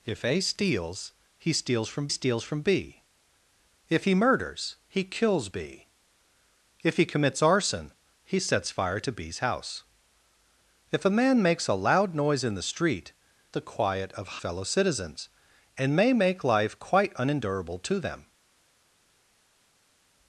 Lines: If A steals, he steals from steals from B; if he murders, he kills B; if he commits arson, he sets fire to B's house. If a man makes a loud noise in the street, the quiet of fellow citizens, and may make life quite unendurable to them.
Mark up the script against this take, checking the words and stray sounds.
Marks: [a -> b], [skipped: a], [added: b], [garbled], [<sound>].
If A steals, he steals from steals from B; if he murders, he kills B; if he commits arson, he sets fire to B's house. If a man makes a loud noise in the street, the quiet of fellow citizens, and may make life quite unendurable to them.